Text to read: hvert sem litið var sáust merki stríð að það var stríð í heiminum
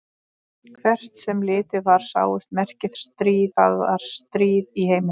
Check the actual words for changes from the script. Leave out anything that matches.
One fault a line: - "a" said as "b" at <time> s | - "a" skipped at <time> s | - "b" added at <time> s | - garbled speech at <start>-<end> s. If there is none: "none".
none